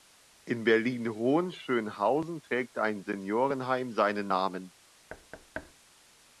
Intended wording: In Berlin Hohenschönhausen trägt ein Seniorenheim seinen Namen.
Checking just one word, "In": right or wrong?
right